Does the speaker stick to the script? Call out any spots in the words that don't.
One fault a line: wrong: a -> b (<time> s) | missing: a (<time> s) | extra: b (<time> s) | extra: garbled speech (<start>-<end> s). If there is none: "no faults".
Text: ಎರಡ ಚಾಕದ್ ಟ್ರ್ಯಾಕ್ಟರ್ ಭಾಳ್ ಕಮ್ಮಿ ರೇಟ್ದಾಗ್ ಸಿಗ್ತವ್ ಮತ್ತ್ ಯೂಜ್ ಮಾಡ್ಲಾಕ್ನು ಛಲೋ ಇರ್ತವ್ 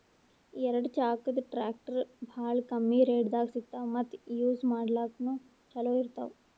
no faults